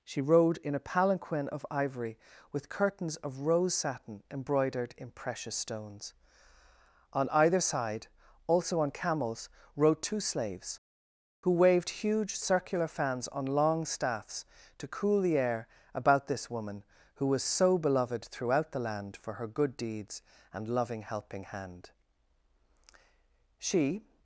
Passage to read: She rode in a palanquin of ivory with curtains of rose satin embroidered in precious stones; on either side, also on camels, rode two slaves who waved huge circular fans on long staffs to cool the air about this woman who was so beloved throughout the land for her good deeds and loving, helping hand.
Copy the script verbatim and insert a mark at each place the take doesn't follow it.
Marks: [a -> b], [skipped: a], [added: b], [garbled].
She rode in a palanquin of ivory with curtains of rose satin embroidered in precious stones; on either side, also on camels, rode two slaves who waved huge circular fans on long staffs to cool the air about this woman who was so beloved throughout the land for her good deeds and loving, helping hand. [added: She]